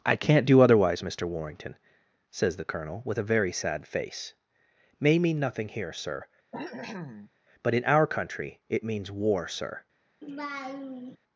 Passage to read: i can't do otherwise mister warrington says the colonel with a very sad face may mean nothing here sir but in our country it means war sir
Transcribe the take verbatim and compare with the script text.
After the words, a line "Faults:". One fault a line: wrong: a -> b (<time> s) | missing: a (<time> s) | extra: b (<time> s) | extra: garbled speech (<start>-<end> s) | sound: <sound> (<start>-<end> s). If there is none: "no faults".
i can't do otherwise mister warrington says the colonel with a very sad face may mean nothing here sir but in our country it means war sir
Faults:
sound: cough (6.5-7.3 s)
sound: laugh (10.2-11.2 s)